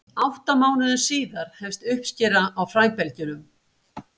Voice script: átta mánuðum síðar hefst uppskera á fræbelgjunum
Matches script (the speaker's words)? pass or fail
pass